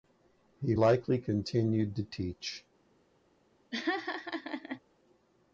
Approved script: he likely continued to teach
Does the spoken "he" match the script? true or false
true